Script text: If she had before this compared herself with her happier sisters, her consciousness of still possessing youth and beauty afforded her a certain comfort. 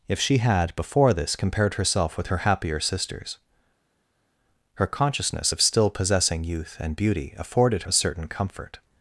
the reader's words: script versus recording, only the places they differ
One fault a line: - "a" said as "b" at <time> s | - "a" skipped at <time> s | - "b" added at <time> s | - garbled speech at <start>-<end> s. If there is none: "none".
- "her" skipped at 7.8 s